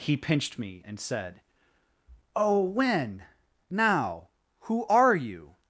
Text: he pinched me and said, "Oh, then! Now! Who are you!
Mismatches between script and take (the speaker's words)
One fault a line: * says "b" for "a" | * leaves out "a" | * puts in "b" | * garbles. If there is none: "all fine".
* says "when" for "then"